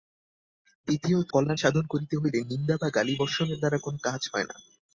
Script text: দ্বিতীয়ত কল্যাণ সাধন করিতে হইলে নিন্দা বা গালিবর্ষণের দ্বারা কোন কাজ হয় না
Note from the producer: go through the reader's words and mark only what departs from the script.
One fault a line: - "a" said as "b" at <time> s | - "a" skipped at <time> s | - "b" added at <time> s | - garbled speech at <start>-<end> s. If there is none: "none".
none